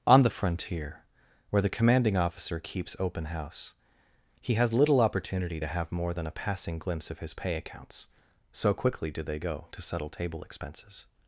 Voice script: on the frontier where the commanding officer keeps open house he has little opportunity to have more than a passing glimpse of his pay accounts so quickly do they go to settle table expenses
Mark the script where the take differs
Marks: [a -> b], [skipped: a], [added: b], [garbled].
on the frontier where the commanding officer keeps open house he has little opportunity to have more than a passing glimpse of his pay accounts so quickly do they go to settle table expenses